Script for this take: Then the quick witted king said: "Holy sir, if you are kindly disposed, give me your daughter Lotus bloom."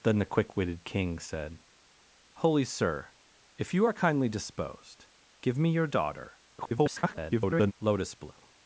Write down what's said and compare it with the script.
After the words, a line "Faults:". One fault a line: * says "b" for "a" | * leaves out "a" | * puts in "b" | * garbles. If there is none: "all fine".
Then the quick witted king said: "Holy sir, if you are kindly disposed, give me your daughter [garbled] Lotus bloom."
Faults:
* garbles